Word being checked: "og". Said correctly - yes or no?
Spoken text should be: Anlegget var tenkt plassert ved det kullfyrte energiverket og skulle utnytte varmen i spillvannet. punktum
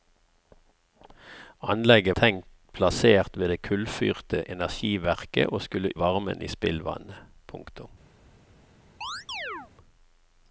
yes